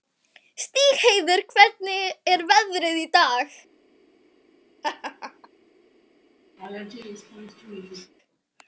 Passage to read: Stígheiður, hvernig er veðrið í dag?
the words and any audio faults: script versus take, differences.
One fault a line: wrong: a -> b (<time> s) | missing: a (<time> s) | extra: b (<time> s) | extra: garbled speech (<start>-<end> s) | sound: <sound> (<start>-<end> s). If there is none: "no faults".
sound: laugh (4.8-5.5 s)
sound: laugh (6.6-8.1 s)